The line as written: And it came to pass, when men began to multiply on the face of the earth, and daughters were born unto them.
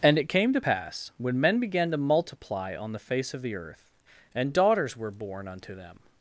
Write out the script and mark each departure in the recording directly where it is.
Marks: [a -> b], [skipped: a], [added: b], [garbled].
And it came to pass, when men began to multiply on the face of the earth, and daughters were born unto them.